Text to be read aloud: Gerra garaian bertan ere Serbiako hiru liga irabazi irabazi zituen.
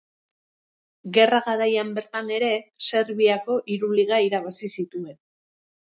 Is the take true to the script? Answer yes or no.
no